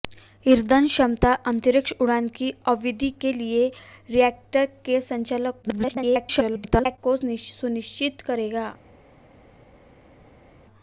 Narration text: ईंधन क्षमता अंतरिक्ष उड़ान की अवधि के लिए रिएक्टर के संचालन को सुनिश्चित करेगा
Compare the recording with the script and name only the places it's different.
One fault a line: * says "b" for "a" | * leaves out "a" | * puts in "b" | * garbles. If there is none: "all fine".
* garbles